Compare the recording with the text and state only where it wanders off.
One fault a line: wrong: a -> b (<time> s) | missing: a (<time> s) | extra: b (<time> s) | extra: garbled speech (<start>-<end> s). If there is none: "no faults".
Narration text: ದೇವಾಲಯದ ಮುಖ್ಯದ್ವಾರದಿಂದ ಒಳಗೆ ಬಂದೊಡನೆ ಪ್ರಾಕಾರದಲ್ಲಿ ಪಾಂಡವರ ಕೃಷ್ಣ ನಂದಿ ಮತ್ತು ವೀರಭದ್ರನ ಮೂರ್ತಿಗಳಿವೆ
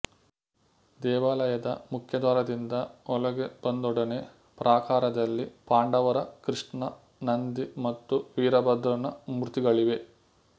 no faults